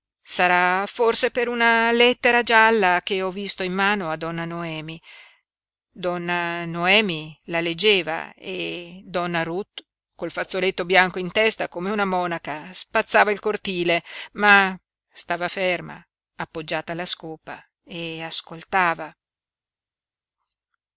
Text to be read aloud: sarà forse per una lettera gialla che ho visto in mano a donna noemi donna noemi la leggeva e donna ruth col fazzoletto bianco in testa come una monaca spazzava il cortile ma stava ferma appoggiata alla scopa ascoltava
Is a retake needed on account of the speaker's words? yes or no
yes